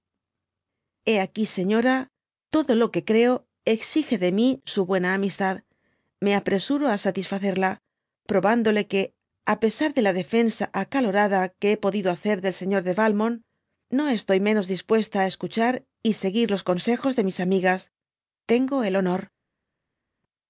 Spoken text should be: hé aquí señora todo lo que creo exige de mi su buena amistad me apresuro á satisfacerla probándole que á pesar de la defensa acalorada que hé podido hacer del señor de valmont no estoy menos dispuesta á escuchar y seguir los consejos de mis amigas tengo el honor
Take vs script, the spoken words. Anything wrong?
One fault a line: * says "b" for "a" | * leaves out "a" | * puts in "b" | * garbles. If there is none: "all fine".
all fine